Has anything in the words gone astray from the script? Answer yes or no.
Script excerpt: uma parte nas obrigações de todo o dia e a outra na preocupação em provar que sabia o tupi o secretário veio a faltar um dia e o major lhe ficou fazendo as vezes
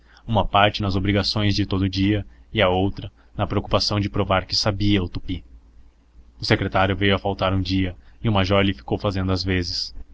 yes